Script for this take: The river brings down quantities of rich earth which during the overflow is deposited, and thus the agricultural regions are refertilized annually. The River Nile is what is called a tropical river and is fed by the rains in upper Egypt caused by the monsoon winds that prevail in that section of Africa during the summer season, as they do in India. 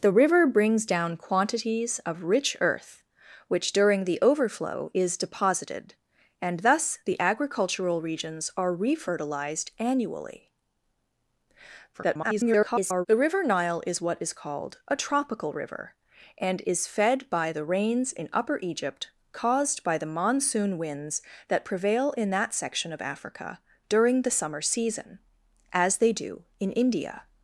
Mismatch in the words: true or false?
true